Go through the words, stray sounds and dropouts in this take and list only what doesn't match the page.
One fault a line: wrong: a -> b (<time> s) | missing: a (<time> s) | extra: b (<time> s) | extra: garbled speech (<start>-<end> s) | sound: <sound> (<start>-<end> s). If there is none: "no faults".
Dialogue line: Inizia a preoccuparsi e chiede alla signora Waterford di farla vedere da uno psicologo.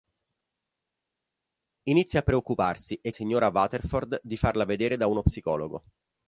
missing: chiede alla (3.1 s)